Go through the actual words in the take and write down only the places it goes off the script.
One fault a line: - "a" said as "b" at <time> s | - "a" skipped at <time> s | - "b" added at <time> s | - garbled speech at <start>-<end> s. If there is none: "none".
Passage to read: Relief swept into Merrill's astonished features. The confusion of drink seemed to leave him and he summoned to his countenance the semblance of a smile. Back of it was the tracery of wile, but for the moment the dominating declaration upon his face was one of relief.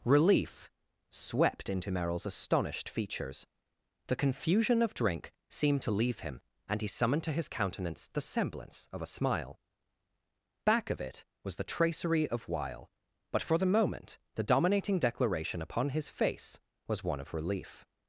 none